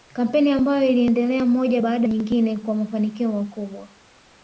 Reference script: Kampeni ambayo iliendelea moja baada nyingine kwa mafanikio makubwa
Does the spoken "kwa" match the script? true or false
true